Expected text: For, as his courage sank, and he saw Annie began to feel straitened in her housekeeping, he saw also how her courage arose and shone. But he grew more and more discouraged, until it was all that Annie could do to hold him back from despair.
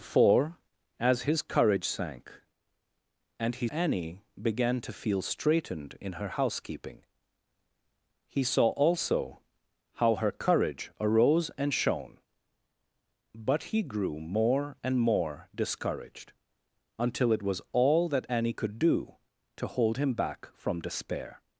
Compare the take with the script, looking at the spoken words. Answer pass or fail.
fail